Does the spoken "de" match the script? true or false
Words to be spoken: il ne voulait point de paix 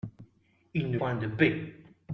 true